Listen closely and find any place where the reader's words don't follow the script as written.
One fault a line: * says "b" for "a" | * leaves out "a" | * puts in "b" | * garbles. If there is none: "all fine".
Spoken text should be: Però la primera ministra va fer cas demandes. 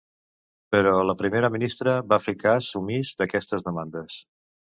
* puts in "omís d'aquestes"